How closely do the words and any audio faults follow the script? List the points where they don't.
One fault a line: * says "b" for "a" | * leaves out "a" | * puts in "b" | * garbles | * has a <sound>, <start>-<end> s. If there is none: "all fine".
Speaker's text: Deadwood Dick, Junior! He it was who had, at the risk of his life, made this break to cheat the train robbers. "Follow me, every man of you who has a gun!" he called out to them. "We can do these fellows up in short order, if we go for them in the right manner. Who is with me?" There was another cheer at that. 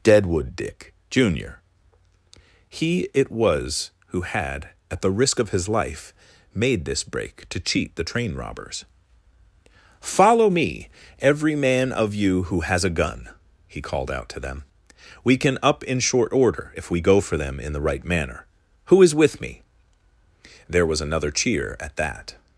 * leaves out "do these fellows"